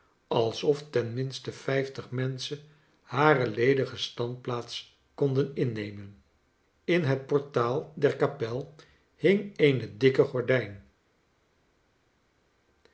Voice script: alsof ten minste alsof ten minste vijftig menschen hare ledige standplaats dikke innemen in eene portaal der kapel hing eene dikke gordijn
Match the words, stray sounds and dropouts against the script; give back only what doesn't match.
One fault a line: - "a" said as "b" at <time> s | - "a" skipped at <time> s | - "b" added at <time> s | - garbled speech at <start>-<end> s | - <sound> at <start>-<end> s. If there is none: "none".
- "alsof ten minste" skipped at 1.5 s
- "dikke" said as "konden" at 5.2 s
- "eene" said as "het" at 7.0 s